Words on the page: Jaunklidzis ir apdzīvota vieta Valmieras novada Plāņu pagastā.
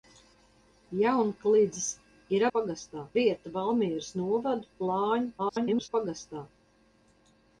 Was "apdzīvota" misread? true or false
true